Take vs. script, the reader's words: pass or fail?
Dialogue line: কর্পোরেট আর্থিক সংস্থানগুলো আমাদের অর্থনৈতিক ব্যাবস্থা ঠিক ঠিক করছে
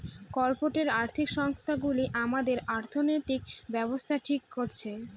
fail